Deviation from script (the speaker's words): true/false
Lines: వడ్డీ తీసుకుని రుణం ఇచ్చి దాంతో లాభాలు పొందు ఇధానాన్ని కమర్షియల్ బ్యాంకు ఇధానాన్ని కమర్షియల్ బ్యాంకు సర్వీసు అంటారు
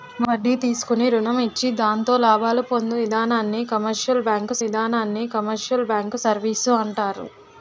false